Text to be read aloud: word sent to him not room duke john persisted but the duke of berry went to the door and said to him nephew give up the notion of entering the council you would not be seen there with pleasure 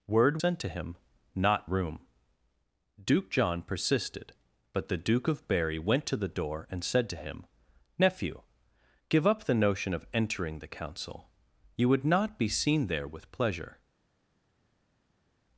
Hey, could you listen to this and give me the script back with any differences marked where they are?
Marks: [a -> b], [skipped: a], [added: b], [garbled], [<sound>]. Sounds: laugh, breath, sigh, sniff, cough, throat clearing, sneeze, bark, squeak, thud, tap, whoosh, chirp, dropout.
word sent to him not room duke john persisted but the duke of berry went to the door and said to him nephew give up the notion of entering the council you would not be seen there with pleasure